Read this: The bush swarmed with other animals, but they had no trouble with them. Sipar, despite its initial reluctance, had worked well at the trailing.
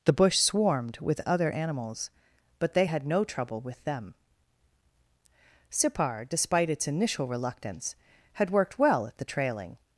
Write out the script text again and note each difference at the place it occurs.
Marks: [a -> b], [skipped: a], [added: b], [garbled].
The bush swarmed with other animals, but they had no trouble with them. Sipar, despite its initial reluctance, had worked well at the trailing.